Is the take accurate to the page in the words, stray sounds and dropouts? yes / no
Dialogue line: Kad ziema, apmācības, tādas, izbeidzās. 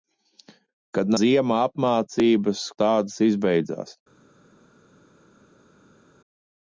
yes